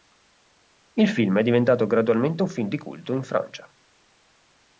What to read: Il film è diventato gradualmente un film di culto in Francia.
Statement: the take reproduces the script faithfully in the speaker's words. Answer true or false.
true